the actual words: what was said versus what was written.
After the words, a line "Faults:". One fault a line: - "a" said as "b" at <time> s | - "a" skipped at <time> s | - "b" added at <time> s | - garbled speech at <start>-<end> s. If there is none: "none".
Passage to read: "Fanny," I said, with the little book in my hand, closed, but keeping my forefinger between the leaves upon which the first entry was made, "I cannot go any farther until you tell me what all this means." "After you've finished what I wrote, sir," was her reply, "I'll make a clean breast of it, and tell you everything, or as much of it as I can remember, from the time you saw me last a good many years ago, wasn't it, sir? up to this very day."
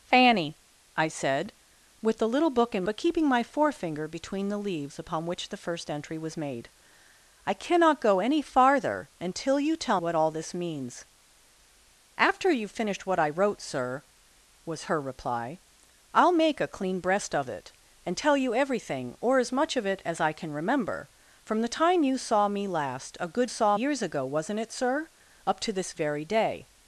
"Fanny," I said, with the little book in but keeping my forefinger between the leaves upon which the first entry was made, "I cannot go any farther until you tell what all this means." "After you've finished what I wrote, sir," was her reply, "I'll make a clean breast of it, and tell you everything, or as much of it as I can remember, from the time you saw me last a good saw years ago, wasn't it, sir? up to this very day."
Faults:
- "my hand closed" skipped at 2.8 s
- "me" skipped at 10.0 s
- "many" said as "saw" at 23.5 s